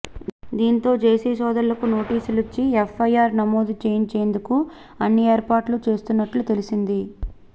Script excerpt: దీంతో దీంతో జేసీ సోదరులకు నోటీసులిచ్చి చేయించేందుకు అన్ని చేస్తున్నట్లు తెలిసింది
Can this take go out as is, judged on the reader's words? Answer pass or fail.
fail